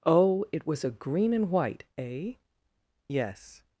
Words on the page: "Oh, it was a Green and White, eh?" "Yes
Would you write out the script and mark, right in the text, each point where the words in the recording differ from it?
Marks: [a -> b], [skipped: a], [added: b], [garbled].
"Oh, it was a Green and White, eh?" "Yes